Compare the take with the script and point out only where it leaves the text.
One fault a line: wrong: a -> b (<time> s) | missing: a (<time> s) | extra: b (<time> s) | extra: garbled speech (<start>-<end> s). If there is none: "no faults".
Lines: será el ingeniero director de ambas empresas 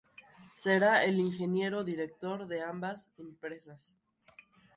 no faults